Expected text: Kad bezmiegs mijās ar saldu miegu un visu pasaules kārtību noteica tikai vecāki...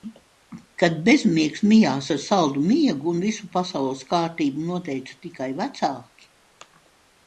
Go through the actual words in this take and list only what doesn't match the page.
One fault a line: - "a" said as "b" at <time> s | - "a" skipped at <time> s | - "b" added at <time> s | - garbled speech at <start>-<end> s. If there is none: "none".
none